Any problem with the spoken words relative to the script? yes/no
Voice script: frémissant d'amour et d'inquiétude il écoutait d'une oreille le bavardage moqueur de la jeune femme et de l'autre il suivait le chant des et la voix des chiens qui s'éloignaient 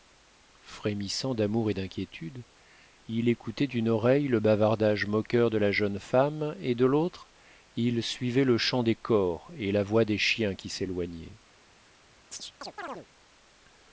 yes